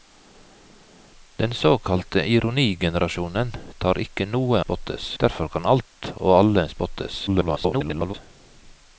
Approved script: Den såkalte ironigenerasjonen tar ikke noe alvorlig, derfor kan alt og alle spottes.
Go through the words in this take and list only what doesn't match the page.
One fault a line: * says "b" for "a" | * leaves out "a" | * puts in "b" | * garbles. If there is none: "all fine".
* says "spottes" for "alvorlig"
* garbles